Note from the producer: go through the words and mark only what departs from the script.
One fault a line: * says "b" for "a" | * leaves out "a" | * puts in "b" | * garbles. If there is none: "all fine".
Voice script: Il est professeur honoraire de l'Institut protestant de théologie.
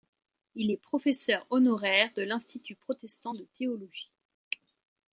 all fine